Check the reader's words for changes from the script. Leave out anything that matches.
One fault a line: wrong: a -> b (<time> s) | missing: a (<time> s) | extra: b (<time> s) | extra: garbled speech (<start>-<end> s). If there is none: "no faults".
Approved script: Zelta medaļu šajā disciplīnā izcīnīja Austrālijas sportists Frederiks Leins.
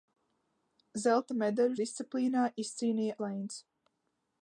missing: šajā (1.8 s)
missing: Austrālijas sportists Frederiks (3.2 s)